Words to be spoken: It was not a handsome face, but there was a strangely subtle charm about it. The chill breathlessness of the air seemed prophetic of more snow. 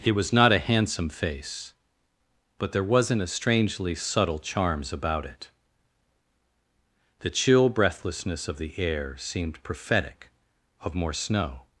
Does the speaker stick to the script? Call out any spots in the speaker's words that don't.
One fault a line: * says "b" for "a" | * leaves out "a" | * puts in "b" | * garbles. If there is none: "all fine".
* says "wasn't" for "was"
* says "charms" for "charm"